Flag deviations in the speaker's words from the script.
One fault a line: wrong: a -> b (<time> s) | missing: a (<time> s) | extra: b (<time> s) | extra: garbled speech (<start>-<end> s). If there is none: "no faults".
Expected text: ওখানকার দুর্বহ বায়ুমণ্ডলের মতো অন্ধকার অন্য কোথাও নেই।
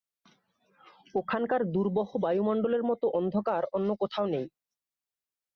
no faults